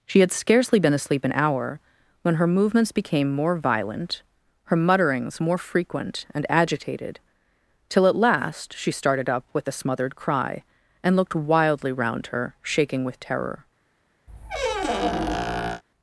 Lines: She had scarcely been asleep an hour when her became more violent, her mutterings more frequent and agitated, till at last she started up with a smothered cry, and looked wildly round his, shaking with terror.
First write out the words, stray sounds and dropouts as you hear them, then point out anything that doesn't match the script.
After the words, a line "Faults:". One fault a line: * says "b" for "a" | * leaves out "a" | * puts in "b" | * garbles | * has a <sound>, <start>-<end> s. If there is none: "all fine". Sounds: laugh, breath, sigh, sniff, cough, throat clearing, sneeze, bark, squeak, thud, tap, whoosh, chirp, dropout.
She had scarcely been asleep an hour when her movements became more violent, her mutterings more frequent and agitated, till at last she started up with a smothered cry, and looked wildly round her, shaking with terror.
Faults:
* puts in "movements"
* says "her" for "his"
* has a squeak, 14.3-15.8 s